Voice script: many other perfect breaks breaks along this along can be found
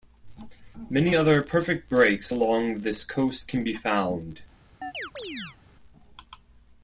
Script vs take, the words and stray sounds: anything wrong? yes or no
yes